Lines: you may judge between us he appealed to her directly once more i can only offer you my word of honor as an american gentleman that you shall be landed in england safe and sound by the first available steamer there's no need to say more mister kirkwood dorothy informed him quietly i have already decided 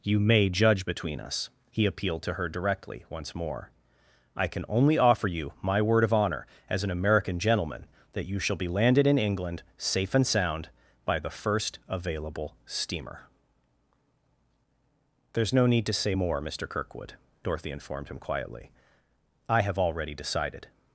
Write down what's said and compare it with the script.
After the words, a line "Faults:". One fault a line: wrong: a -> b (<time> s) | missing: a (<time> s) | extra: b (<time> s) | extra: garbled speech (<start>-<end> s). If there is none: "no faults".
you may judge between us he appealed to her directly once more i can only offer you my word of honor as an american gentleman that you shall be landed in england safe and sound by the first available steamer there's no need to say more mister kirkwood dorothy informed him quietly i have already decided
Faults:
no faults